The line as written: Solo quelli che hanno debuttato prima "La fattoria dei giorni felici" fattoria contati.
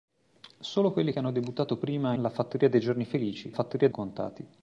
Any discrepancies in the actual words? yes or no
no